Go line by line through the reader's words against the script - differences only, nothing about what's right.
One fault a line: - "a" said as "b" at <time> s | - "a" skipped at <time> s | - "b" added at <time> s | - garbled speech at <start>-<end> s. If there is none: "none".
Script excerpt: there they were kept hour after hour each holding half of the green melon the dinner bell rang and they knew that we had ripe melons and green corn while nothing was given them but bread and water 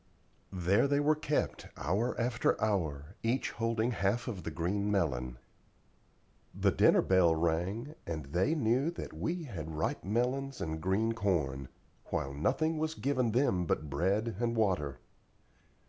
none